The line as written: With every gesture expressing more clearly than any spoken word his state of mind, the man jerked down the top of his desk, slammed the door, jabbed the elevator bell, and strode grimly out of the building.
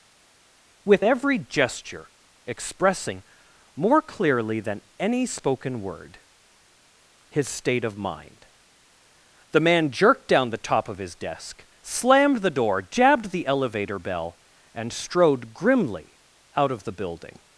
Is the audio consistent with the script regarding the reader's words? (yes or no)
yes